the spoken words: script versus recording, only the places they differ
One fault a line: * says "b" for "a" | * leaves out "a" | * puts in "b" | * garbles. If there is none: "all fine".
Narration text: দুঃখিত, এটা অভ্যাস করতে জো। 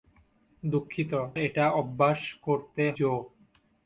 all fine